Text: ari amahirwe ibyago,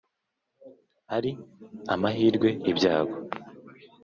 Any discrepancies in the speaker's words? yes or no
no